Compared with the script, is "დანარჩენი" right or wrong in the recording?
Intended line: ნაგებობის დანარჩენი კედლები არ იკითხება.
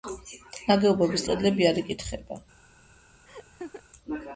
wrong